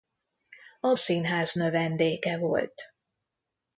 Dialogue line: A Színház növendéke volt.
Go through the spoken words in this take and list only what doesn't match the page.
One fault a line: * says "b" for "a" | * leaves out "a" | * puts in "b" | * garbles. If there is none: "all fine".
all fine